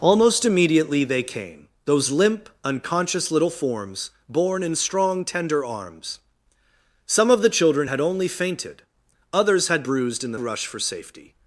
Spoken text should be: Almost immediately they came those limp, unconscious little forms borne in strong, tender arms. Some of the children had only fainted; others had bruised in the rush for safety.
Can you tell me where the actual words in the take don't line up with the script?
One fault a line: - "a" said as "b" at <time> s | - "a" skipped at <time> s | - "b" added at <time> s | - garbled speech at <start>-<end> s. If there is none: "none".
none